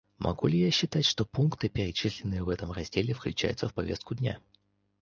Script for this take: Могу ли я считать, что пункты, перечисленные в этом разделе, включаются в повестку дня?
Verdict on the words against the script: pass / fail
pass